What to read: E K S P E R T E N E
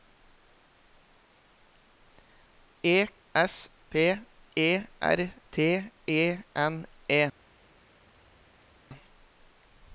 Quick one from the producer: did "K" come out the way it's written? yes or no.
no